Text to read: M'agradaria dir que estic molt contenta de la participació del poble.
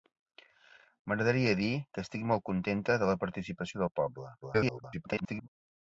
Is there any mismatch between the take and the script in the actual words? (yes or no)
yes